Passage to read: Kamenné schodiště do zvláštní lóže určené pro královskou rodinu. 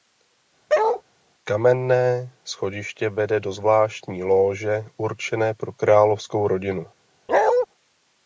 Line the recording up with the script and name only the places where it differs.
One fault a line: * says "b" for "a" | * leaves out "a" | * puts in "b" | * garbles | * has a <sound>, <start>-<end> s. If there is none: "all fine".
* has a bark, 0.7-1.0 s
* puts in "vede"
* has a bark, 7.3-7.7 s